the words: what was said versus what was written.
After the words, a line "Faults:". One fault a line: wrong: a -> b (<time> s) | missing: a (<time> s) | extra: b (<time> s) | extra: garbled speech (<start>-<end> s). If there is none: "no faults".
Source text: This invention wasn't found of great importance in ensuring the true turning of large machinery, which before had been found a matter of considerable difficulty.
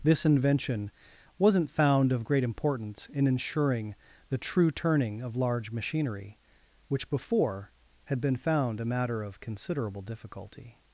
This invention wasn't found of great importance in ensuring the true turning of large machinery, which before had been found a matter of considerable difficulty.
Faults:
no faults